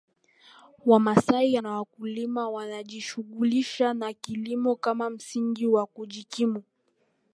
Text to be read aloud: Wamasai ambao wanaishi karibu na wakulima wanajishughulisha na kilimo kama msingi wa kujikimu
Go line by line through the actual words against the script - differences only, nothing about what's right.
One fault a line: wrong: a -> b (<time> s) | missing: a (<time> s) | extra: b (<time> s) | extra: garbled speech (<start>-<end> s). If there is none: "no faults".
missing: ambao wanaishi karibu (1.6 s)